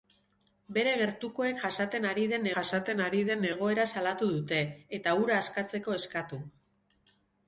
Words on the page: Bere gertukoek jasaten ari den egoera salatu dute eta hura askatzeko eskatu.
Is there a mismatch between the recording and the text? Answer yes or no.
yes